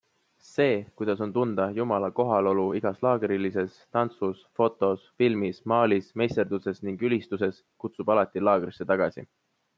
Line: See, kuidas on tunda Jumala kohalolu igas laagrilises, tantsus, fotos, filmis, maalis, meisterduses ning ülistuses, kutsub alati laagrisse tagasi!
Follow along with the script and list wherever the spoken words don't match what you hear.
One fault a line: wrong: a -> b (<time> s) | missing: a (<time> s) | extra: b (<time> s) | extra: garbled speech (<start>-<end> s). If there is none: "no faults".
no faults